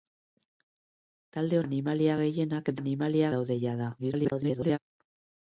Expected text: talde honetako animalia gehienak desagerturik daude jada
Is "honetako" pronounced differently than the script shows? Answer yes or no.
yes